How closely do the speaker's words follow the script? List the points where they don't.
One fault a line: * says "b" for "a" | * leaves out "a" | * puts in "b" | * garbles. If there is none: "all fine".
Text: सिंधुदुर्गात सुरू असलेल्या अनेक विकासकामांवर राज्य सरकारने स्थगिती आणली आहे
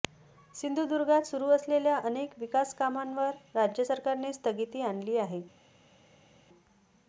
all fine